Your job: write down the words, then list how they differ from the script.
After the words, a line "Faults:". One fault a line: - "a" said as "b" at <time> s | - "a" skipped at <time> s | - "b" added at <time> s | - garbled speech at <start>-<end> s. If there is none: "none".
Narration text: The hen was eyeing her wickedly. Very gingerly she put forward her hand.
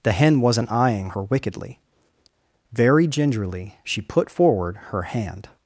The hen wasn't eyeing her wickedly. Very gingerly she put forward her hand.
Faults:
- "was" said as "wasn't" at 0.4 s